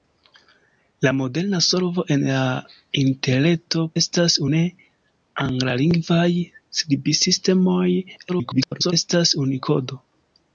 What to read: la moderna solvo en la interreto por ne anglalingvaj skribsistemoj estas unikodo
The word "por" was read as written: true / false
false